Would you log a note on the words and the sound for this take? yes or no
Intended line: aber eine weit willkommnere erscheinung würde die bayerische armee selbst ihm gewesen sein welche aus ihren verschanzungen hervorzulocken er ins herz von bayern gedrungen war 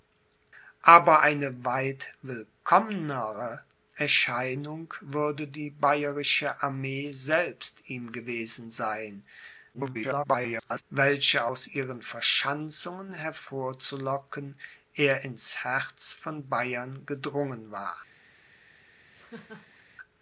yes